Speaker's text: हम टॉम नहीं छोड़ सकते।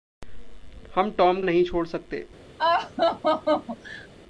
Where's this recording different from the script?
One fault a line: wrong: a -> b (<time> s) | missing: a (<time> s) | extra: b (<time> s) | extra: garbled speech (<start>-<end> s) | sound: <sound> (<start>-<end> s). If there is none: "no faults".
sound: laugh (2.6-4.1 s)